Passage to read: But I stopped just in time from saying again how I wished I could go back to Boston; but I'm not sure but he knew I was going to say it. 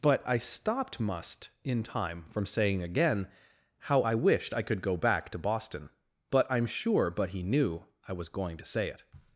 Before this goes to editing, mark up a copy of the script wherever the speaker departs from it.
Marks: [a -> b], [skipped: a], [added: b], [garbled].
But I stopped [just -> must] in time from saying again how I wished I could go back to Boston; but I'm [skipped: not] sure but he knew I was going to say it.